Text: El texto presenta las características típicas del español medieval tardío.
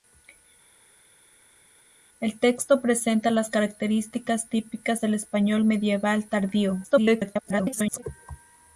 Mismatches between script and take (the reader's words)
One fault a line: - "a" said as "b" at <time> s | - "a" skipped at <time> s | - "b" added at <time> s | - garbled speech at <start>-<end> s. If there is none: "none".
- garbled speech at 6.8-8.0 s